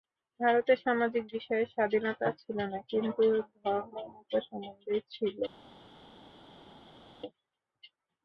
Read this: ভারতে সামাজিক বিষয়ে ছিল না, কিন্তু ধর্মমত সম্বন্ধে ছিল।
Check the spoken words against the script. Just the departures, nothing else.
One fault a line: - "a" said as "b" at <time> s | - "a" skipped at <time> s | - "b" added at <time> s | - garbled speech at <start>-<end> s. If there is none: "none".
- "স্বাধীনতা" added at 1.7 s